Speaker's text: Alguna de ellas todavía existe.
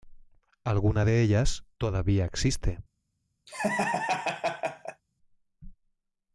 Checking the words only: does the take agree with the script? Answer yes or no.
yes